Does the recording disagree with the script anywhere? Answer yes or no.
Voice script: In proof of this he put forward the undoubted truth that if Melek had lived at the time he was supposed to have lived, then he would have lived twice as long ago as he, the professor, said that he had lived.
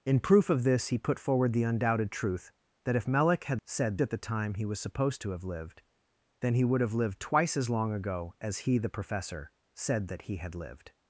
yes